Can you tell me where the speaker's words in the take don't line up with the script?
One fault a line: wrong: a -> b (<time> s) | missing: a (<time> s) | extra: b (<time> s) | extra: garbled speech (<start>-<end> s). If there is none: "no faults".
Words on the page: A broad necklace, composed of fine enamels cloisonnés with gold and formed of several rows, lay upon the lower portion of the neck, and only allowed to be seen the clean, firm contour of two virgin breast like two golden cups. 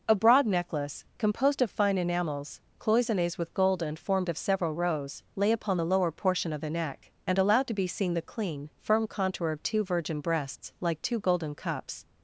missing: only (7.4 s)
wrong: breast -> breasts (10.2 s)